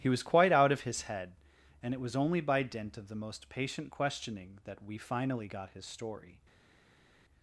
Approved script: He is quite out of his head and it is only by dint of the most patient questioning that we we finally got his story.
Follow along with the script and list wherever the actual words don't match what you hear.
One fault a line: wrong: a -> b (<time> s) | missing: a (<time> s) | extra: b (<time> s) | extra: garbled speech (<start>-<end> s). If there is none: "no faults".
wrong: is -> was (0.1 s)
wrong: is -> was (2.0 s)
missing: we (5.0 s)